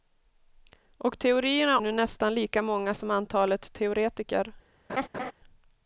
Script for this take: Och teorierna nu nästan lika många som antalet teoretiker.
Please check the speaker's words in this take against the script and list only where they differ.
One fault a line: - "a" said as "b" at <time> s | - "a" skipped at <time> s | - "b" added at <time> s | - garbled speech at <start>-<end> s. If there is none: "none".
none